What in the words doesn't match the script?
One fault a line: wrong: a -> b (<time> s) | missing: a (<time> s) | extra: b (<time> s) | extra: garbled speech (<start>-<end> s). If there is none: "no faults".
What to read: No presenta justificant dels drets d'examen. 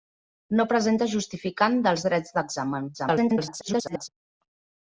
extra: garbled speech (2.9-4.1 s)